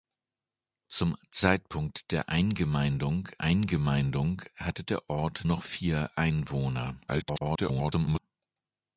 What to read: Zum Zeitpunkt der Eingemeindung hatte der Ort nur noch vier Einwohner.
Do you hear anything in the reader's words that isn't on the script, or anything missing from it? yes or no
yes